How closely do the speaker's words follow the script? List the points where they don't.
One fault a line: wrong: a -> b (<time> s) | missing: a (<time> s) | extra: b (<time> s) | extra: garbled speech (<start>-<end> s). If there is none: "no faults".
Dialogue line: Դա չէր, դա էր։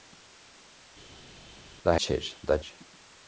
no faults